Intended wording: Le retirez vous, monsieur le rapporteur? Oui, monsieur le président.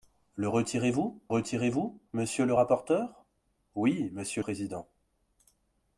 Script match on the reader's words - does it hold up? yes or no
no